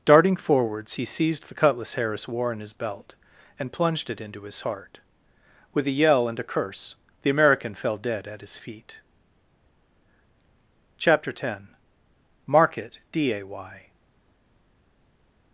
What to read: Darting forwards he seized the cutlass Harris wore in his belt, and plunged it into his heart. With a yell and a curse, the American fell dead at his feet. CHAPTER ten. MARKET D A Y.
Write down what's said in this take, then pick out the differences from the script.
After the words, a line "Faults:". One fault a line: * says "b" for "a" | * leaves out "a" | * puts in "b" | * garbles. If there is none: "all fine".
Darting forwards he seized the cutlass Harris wore in his belt, and plunged it into his heart. With a yell and a curse, the American fell dead at his feet. CHAPTER ten. MARKET D A Y.
Faults:
all fine